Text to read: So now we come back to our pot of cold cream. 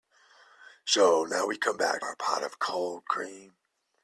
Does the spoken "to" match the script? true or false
false